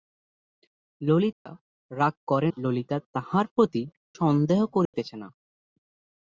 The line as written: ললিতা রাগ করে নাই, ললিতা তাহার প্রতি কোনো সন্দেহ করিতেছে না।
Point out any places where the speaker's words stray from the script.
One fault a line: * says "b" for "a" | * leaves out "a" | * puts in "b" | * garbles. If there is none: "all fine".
* leaves out "নাই"
* leaves out "কোনো"